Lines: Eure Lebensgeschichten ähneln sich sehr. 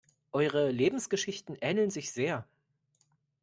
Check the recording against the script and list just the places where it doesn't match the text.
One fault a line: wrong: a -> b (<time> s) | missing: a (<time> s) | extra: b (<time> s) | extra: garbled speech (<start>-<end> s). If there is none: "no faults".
no faults